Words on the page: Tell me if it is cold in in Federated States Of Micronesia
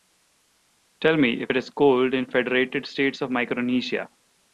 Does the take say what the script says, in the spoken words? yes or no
no